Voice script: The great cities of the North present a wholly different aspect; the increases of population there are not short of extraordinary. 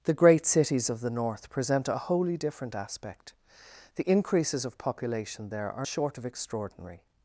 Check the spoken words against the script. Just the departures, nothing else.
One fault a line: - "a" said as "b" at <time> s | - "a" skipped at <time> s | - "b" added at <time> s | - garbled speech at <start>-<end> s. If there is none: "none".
- "not" skipped at 5.9 s